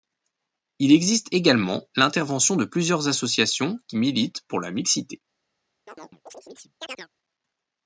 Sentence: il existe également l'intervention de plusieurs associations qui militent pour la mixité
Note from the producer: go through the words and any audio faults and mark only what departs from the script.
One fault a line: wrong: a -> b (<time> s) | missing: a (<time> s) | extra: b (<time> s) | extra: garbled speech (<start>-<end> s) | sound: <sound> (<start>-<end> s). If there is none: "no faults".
sound: chirp (5.9-7.1 s)